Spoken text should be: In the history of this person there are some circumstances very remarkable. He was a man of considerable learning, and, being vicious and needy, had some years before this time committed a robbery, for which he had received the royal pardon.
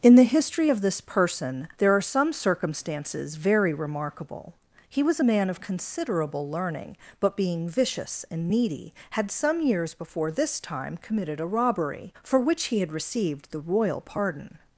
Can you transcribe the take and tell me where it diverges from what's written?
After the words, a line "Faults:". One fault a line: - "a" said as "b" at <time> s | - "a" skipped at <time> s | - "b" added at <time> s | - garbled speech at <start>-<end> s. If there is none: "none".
In the history of this person there are some circumstances very remarkable. He was a man of considerable learning, but, being vicious and needy, had some years before this time committed a robbery, for which he had received the royal pardon.
Faults:
- "and" said as "but" at 7.2 s